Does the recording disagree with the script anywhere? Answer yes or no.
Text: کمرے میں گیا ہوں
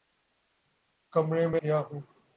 no